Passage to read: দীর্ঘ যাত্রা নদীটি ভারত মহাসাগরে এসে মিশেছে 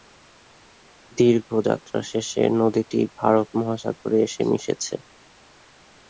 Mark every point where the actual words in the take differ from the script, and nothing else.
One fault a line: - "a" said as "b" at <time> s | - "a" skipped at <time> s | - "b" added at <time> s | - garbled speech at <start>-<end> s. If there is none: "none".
- "শেষে" added at 2.1 s